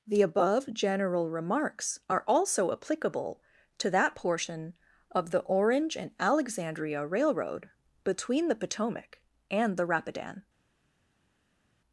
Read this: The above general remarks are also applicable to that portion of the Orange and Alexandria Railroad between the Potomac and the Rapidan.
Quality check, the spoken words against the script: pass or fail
pass